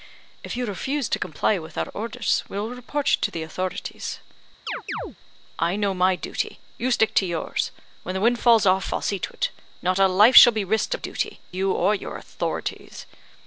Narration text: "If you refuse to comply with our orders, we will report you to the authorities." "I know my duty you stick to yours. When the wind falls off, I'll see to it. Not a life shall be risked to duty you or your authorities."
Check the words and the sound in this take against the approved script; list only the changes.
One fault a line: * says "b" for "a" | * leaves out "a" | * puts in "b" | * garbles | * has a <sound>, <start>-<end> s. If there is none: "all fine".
* has a chirp, 4.7-5.2 s